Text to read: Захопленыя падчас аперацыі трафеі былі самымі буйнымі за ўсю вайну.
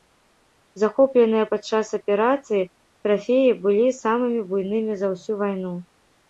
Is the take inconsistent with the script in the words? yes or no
no